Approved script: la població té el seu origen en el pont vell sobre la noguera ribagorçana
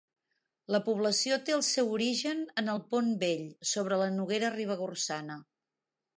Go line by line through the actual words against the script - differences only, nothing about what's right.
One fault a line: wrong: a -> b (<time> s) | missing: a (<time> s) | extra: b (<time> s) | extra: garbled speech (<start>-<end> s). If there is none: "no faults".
no faults